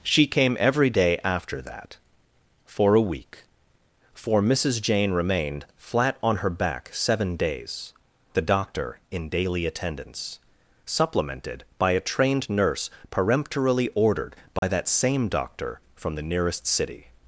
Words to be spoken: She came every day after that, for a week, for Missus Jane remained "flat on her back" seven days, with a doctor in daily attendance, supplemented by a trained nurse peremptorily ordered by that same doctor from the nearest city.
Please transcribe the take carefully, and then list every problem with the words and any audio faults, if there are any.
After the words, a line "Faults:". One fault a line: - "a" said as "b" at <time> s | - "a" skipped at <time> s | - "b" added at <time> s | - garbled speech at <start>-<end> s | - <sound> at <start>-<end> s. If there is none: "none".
She came every day after that, for a week, for Missus Jane remained "flat on her back" seven days, a doctor in daily attendance, supplemented by a trained nurse peremptorily ordered by that same doctor from the nearest city.
Faults:
- "with" skipped at 7.9 s
- dropout at 14.6-14.6 s